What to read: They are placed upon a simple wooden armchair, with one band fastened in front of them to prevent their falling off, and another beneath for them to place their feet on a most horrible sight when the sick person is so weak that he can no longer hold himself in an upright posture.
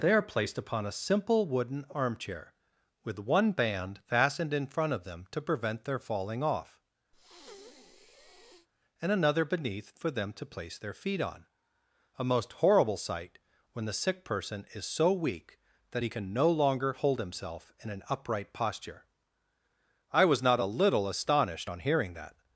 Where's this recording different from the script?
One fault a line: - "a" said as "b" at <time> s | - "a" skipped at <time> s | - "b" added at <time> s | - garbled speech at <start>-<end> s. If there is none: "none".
- "I was not a little astonished on hearing that" added at 20.1 s